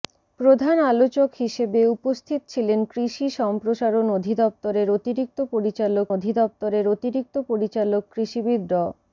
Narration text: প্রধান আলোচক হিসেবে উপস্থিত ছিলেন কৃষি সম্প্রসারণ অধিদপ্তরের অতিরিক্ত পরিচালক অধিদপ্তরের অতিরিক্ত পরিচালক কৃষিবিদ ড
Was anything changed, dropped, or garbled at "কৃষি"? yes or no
no